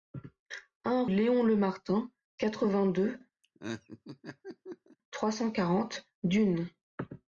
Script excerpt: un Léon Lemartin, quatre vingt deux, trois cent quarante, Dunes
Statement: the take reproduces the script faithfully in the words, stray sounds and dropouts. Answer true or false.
false